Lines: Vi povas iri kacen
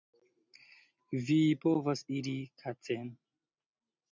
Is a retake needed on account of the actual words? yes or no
no